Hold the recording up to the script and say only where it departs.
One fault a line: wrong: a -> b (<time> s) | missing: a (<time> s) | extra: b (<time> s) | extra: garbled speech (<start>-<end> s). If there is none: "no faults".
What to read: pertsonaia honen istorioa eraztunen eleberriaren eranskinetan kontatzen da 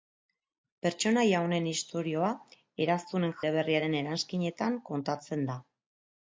no faults